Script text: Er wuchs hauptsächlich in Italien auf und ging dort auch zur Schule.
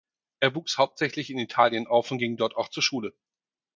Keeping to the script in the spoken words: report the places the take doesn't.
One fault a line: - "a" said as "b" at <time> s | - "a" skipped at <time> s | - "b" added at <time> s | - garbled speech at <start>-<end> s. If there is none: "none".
none